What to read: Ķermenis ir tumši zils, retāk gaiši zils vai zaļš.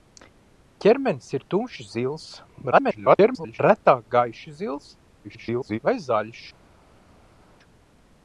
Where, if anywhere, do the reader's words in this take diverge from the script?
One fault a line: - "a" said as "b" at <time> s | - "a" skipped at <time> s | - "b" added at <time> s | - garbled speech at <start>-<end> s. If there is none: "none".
- garbled speech at 2.7-3.6 s
- garbled speech at 5.2-5.8 s